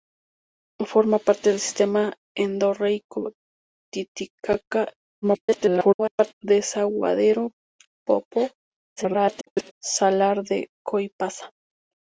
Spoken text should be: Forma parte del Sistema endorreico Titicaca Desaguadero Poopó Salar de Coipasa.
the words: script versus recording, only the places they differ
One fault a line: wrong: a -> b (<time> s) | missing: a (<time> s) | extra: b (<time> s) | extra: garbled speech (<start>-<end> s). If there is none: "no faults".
extra: garbled speech (5.2-6.3 s)
extra: garbled speech (9.0-9.7 s)